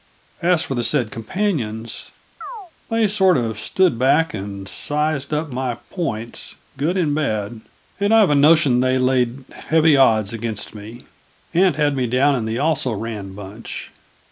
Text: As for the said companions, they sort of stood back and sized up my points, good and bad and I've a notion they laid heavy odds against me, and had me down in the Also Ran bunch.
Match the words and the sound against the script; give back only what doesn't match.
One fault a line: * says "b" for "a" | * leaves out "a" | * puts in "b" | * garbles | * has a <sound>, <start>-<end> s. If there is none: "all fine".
* has a chirp, 2.4-2.7 s